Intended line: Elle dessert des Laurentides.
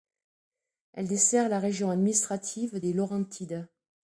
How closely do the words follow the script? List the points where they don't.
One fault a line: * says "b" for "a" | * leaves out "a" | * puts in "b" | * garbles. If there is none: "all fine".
* puts in "la région administrative"